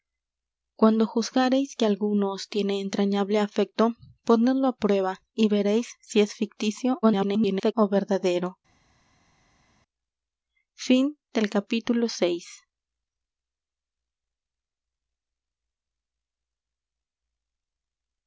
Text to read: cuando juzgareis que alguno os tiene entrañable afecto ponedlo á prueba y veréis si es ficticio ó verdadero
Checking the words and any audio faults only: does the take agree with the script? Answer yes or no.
no